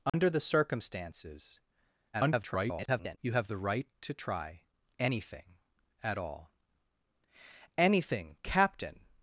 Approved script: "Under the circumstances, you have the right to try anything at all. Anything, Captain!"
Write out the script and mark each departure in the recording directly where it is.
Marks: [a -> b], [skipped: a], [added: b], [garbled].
"Under the circumstances, [garbled] you have the right to try anything at all. Anything, Captain!"